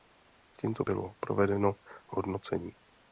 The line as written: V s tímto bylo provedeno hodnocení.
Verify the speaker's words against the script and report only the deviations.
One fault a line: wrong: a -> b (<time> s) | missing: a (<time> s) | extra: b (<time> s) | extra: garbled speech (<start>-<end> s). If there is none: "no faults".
no faults